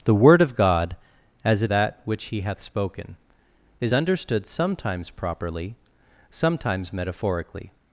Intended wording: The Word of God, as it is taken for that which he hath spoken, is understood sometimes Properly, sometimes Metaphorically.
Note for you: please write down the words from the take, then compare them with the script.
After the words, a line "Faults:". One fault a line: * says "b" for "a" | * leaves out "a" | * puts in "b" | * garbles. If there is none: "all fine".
The Word of God, as it that which he hath spoken, is understood sometimes Properly, sometimes Metaphorically.
Faults:
* leaves out "is taken for"